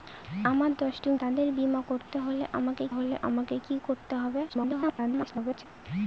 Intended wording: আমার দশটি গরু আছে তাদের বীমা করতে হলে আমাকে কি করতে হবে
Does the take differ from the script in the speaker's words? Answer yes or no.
yes